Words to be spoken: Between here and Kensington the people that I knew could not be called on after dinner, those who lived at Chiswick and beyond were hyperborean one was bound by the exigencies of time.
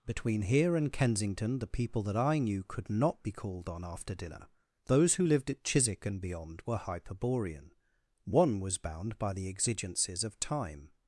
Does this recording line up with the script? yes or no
yes